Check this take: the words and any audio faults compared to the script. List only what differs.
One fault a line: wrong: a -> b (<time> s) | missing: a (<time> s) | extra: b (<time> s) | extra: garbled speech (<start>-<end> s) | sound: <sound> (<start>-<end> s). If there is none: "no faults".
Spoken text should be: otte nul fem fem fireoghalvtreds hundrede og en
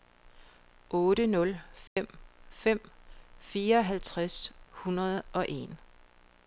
sound: dropout (1.9-2.0 s)